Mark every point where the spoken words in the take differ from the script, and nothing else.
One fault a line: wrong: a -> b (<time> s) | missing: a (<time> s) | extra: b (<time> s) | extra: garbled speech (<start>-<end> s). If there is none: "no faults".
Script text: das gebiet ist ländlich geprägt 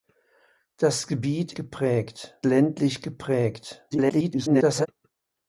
wrong: ist -> geprägt (1.5 s)
extra: garbled speech (3.9-4.9 s)